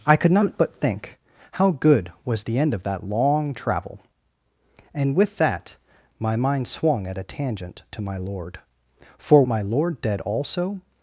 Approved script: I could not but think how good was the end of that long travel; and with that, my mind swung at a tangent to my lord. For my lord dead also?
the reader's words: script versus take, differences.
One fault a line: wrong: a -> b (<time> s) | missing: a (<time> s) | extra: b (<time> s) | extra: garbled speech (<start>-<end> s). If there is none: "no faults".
no faults